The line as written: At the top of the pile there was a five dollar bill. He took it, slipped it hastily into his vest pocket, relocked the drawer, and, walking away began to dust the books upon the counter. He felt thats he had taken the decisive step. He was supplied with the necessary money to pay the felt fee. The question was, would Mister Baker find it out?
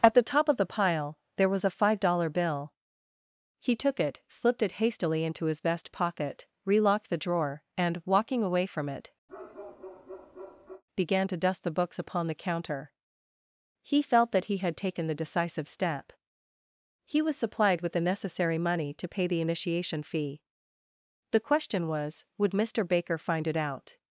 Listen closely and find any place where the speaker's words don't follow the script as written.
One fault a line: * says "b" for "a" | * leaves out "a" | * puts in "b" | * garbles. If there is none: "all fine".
* puts in "from it"
* says "that" for "thats"
* says "initiation" for "felt"